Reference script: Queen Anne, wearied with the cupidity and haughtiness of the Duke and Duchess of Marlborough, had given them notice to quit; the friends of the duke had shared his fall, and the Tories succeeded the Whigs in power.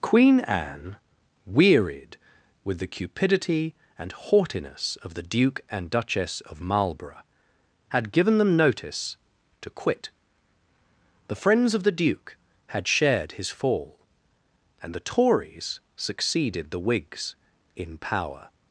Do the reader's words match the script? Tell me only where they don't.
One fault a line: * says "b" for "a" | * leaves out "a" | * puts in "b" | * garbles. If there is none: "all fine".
all fine